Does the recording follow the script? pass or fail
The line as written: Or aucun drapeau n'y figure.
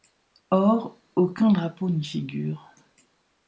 pass